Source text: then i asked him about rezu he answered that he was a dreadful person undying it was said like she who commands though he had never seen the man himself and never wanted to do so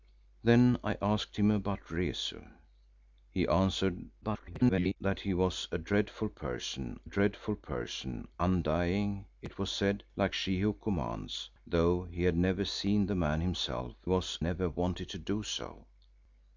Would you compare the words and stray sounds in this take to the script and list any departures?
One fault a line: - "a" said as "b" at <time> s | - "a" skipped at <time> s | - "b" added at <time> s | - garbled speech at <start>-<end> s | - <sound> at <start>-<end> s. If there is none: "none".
- garbled speech at 4.2-5.0 s
- "dreadful person" added at 7.0 s
- "and" said as "was" at 14.0 s